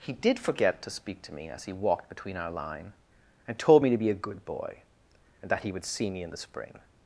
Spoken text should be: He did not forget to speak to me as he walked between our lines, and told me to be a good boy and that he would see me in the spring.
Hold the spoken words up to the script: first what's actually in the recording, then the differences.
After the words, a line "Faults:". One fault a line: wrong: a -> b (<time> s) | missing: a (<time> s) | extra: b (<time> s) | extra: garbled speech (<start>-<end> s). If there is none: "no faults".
He did forget to speak to me as he walked between our line, and told me to be a good boy and that he would see me in the spring.
Faults:
missing: not (0.4 s)
wrong: lines -> line (2.5 s)